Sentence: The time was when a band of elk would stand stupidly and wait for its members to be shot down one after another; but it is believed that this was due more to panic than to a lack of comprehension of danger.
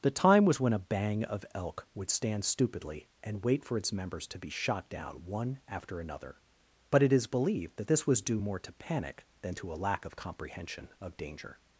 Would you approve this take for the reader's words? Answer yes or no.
no